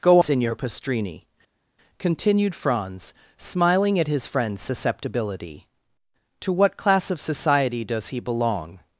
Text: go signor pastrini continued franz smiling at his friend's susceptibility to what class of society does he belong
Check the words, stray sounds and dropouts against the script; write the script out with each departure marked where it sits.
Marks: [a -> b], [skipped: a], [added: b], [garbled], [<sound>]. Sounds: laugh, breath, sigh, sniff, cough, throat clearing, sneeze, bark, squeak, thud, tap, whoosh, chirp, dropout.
go signor pastrini continued franz smiling at his friend's susceptibility to what class of society does he belong